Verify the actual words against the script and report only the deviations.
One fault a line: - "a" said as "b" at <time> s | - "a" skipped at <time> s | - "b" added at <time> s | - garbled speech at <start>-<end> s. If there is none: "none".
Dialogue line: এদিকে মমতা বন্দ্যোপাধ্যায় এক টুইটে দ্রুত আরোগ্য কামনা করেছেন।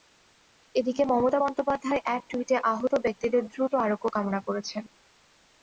- "আহত ব্যক্তিদের" added at 2.7 s